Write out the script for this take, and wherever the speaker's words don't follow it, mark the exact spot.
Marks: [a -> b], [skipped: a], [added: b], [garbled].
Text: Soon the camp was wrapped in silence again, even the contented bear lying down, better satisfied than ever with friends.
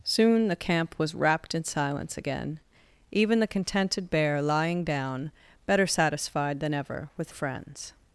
Soon the camp was wrapped in silence again, even the contented bear lying down, better satisfied than ever with friends.